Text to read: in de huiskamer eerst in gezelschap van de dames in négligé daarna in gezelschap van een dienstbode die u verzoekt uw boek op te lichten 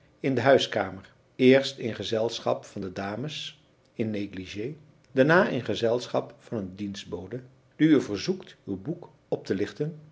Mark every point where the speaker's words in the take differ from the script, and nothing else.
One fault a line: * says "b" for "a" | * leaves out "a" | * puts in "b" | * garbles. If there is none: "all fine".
all fine